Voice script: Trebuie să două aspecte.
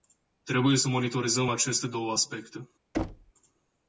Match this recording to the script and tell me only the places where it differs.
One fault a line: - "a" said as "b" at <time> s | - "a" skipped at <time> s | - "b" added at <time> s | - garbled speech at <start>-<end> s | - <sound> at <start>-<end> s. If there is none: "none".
- "monitorizăm aceste" added at 0.9 s
- thud at 2.9-3.3 s